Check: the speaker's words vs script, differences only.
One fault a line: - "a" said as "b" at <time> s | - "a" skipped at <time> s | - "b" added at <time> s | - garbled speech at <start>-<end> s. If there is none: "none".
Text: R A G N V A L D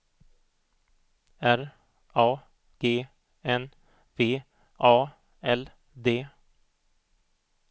none